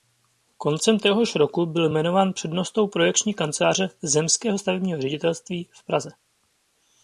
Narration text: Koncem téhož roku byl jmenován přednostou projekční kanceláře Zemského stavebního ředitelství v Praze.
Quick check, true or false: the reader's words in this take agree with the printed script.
true